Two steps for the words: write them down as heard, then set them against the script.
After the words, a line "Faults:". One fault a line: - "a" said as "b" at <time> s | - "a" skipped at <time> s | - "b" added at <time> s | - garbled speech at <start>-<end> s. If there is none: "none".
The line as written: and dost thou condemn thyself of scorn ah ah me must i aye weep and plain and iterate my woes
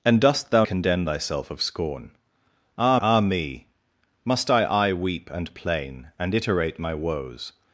and dost thou condemn thyself of scorn ah ah me must i aye weep and plain and iterate my woes
Faults:
none